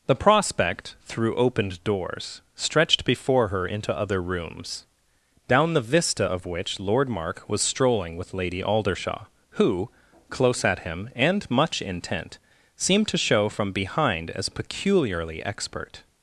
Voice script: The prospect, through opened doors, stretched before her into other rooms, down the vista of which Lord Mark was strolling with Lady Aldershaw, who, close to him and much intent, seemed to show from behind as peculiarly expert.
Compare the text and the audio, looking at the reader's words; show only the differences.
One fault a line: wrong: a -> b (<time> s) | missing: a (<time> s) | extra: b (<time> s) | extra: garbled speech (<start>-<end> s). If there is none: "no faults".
wrong: to -> at (10.6 s)